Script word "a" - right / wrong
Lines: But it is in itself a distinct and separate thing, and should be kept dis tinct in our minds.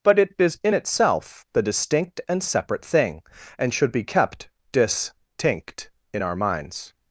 wrong